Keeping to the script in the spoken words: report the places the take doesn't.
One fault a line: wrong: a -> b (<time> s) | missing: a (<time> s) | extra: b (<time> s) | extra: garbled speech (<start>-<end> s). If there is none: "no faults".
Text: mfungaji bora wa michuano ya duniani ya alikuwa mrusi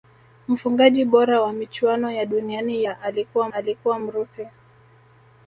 extra: alikuwa (3.5 s)